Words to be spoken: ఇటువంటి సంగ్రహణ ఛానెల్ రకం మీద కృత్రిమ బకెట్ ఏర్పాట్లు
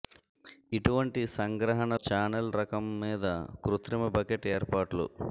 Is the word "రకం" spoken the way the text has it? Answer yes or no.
yes